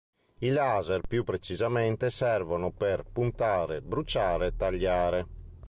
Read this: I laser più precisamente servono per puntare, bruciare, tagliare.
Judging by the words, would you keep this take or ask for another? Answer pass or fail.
pass